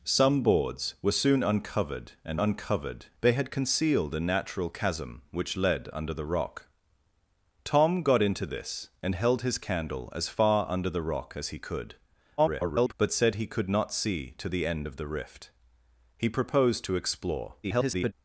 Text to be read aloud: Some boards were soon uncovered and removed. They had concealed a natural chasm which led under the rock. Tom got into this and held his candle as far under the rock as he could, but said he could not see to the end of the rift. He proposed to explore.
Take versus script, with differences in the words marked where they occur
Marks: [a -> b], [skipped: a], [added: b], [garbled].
Some boards were soon uncovered and [removed. -> uncovered] They had concealed a natural chasm which led under the rock. Tom got into this and held his candle as far under the rock as he could, [garbled] but said he could not see to the end of the rift. He proposed to explore. [garbled]